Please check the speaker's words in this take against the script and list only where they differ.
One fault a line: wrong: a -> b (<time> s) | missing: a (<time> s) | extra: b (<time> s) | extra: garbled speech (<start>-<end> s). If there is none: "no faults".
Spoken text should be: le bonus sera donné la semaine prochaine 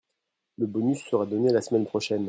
no faults